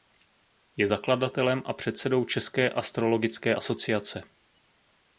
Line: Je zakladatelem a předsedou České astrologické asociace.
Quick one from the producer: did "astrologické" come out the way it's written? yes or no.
yes